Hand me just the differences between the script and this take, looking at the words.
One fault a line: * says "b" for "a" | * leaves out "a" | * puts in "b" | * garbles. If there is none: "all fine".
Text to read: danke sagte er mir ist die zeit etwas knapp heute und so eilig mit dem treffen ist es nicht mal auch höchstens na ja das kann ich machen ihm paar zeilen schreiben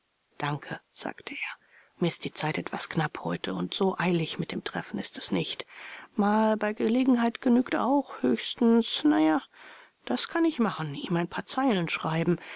* puts in "bei gelegenheit genügt"
* puts in "ein"